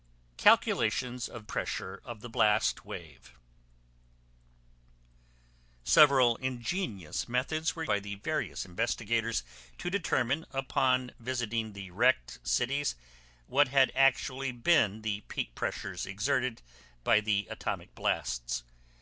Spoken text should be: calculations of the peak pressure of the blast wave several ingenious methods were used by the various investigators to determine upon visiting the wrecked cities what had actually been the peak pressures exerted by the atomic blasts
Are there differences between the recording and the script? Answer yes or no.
yes